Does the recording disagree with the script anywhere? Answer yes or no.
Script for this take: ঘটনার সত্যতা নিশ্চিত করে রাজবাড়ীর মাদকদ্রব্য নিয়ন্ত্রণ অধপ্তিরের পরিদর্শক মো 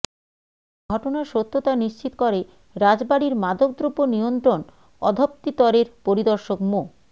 no